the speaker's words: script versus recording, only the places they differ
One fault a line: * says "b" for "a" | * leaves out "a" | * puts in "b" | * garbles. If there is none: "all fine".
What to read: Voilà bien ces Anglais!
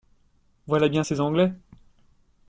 all fine